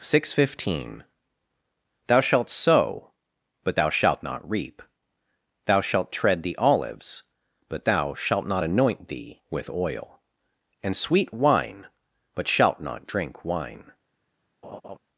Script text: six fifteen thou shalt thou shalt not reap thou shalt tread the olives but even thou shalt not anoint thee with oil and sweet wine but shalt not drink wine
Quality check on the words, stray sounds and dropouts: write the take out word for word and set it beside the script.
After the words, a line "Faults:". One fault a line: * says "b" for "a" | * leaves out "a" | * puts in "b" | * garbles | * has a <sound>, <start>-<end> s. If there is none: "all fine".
six fifteen thou shalt sow but thou shalt not reap thou shalt tread the olives but thou shalt not anoint thee with oil and sweet wine but shalt not drink wine
Faults:
* puts in "sow but"
* leaves out "even"
* has a laugh, 14.6-15.0 s